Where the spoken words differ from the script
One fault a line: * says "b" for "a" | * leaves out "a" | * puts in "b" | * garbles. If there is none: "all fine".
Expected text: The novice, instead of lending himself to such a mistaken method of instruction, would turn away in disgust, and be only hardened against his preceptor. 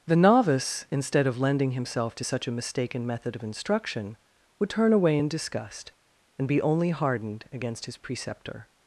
all fine